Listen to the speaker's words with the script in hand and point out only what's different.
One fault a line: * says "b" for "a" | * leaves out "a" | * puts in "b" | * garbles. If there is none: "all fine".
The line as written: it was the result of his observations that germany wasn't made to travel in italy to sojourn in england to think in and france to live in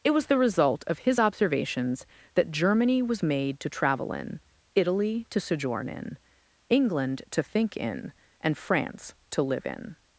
* says "was" for "wasn't"